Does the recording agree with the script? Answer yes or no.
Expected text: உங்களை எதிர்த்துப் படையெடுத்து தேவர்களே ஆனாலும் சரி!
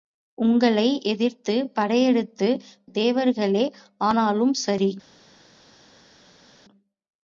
yes